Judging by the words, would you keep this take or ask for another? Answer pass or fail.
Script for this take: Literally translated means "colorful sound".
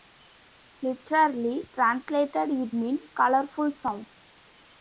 fail